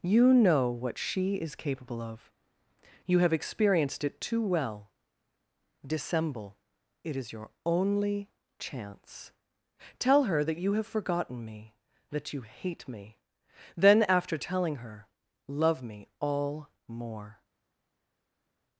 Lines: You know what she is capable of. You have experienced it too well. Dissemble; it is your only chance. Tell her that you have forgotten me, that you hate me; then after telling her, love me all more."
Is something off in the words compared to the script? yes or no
no